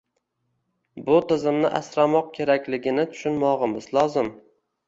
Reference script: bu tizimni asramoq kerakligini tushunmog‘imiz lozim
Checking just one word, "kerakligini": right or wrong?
right